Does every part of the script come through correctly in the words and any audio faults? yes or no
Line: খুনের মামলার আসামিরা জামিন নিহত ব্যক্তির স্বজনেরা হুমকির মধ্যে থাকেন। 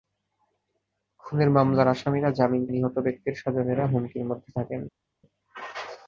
yes